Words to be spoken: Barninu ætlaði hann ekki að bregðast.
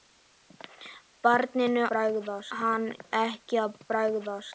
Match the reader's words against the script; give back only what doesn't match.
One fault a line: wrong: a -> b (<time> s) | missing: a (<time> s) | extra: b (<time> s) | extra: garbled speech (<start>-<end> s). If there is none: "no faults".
wrong: ætlaði -> bregðast (1.9 s)